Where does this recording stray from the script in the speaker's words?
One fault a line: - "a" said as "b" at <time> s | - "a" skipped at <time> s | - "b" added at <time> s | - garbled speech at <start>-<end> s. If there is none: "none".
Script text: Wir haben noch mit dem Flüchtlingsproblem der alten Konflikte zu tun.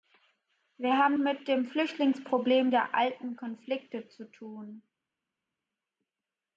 - "noch" skipped at 1.1 s